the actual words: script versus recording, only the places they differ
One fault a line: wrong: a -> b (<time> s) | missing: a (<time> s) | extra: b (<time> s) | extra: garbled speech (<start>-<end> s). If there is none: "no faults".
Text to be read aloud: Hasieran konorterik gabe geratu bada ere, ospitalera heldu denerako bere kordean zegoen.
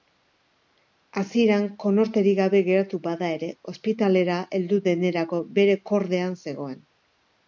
no faults